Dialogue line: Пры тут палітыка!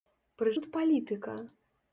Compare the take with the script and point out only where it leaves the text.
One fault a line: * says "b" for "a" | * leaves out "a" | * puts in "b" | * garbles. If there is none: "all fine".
all fine